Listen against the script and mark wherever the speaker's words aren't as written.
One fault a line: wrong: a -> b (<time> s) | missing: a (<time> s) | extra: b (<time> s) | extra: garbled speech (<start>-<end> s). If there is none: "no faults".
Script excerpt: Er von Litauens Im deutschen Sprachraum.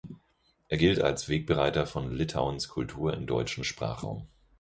extra: gilt als Wegbereiter (0.8 s)
extra: Kultur (2.7 s)